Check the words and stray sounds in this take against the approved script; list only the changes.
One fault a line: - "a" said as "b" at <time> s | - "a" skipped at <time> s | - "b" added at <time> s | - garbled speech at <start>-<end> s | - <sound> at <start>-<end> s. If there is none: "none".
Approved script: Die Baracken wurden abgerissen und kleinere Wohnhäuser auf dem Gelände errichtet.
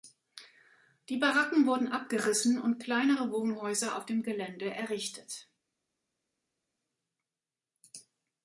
none